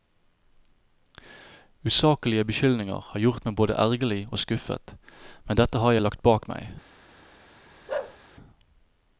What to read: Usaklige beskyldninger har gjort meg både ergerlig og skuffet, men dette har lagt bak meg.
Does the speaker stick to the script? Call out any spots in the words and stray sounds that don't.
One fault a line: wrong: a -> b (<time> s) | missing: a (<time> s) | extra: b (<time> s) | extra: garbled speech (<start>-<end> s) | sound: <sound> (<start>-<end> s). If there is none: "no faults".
sound: bark (7.9-8.2 s)